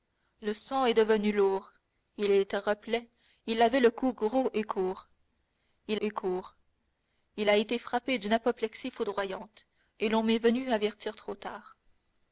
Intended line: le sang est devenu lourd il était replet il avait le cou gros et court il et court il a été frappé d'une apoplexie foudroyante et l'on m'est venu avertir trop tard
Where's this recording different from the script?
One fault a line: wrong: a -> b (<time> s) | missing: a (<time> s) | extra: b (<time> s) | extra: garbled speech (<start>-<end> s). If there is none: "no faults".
no faults